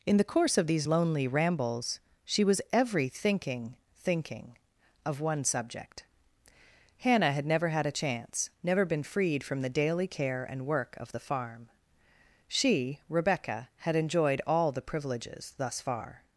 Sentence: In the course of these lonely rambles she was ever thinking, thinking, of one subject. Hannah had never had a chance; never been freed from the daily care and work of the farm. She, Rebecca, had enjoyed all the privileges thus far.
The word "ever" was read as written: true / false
false